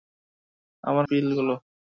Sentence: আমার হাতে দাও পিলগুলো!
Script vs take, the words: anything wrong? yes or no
yes